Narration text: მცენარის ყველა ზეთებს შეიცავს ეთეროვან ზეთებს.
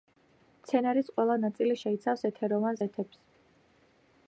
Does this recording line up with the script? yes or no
no